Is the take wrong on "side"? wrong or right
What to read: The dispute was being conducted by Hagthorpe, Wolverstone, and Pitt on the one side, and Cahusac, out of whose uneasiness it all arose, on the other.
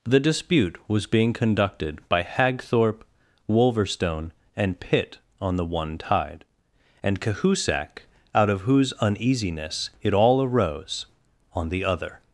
wrong